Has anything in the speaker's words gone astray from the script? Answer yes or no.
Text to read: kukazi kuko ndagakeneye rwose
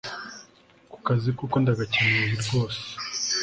no